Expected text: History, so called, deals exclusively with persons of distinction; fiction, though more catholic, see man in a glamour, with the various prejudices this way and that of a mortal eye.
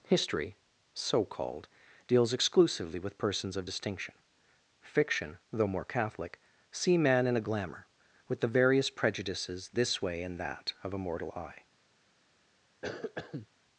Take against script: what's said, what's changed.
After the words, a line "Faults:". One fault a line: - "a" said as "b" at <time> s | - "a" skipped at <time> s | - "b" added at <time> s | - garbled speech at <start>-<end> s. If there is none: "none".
History, so called, deals exclusively with persons of distinction; fiction, though more catholic, see man in a glamour, with the various prejudices this way and that of a mortal eye.
Faults:
none